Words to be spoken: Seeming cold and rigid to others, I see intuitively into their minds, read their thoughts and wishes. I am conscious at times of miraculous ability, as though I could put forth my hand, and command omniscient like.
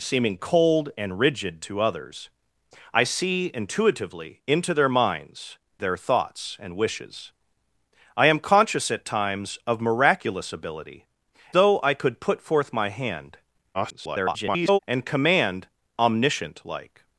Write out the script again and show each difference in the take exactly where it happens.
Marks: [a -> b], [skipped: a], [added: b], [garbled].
Seeming cold and rigid to others, I see intuitively into their minds, [skipped: read] their thoughts and wishes. I am conscious at times of miraculous ability, [skipped: as] though I could put forth my hand, [garbled] and command omniscient like.